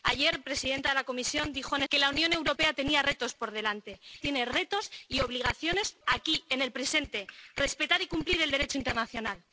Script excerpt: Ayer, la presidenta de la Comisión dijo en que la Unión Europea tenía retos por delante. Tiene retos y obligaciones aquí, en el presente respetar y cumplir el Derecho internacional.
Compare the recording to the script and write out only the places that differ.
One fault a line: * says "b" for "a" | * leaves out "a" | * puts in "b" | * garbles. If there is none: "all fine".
all fine